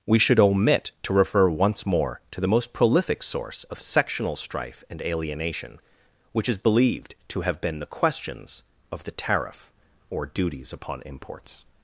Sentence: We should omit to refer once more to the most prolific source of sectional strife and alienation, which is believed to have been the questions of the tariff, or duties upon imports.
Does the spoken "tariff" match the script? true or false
true